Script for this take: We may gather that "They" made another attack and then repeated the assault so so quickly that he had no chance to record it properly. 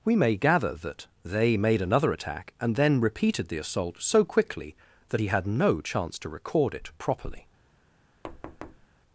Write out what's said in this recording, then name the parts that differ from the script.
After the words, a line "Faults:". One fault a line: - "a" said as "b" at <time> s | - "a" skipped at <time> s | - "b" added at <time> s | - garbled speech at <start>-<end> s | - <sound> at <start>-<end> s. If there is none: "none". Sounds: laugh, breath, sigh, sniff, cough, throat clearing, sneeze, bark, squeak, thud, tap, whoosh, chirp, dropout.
We may gather that "They" made another attack and then repeated the assault so quickly that he had no chance to record it properly.
Faults:
- "so" skipped at 4.2 s
- thud at 8.2-8.9 s